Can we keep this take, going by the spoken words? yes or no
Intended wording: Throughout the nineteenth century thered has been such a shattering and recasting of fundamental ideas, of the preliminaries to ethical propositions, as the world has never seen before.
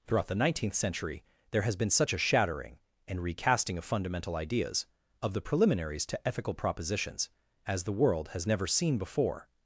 no